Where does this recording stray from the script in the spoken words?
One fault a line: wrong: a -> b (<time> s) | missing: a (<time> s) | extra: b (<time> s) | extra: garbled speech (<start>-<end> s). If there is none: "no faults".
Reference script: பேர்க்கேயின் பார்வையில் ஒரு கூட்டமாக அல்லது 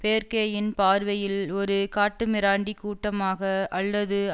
extra: காட்டுமிராண்டி (2.0 s)